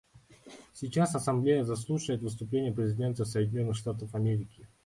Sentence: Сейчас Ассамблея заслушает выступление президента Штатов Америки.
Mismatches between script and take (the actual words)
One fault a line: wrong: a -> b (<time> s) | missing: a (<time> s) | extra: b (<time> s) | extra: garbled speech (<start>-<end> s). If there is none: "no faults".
extra: Соединенных (3.2 s)